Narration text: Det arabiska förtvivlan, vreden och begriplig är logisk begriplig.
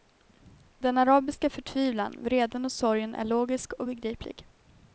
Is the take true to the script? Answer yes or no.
no